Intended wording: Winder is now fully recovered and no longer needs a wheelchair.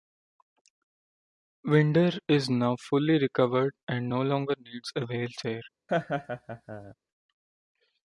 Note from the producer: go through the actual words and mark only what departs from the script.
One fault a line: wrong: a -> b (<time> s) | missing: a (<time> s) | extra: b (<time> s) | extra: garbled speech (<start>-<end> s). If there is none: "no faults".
no faults